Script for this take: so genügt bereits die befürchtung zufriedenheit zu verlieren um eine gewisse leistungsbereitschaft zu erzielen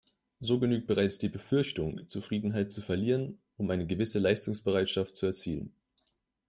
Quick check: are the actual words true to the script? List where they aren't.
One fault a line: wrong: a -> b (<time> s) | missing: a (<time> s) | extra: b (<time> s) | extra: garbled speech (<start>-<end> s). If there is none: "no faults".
no faults